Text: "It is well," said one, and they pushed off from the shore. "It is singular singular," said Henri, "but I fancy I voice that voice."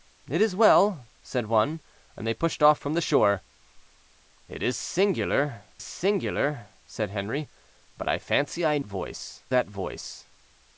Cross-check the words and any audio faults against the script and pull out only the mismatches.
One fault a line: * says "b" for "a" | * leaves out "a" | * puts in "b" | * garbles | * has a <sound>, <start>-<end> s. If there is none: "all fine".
all fine